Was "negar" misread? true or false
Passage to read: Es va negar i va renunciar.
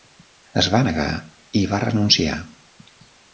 false